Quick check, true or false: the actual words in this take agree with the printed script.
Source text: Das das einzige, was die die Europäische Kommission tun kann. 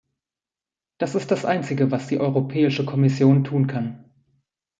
false